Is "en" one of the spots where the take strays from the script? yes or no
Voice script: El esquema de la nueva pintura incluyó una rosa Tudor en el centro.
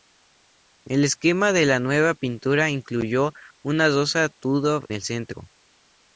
yes